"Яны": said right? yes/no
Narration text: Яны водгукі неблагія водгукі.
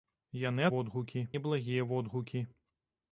yes